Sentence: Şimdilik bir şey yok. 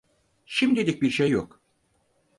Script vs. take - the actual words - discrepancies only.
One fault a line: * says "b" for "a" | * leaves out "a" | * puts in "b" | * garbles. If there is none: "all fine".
all fine